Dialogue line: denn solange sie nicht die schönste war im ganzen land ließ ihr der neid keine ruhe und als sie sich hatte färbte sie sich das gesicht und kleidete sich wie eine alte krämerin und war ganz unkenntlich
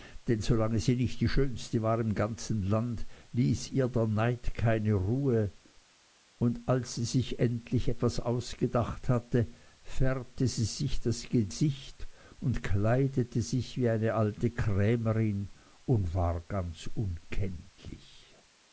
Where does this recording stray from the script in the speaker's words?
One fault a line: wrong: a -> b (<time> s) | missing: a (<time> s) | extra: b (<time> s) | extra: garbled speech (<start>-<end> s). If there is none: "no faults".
extra: endlich etwas ausgedacht (7.4 s)